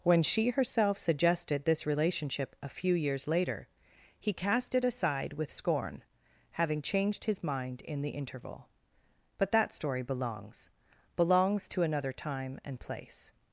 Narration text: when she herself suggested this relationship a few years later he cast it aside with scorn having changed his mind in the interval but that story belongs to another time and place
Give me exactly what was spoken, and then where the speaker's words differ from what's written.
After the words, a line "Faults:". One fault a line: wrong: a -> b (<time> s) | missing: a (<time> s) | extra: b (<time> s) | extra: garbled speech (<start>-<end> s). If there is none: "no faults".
when she herself suggested this relationship a few years later he cast it aside with scorn having changed his mind in the interval but that story belongs belongs to another time and place
Faults:
extra: belongs (11.1 s)